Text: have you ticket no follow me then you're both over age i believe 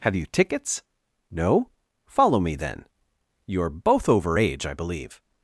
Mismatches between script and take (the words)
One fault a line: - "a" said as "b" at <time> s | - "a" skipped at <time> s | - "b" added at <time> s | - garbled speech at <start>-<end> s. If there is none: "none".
- "ticket" said as "tickets" at 0.2 s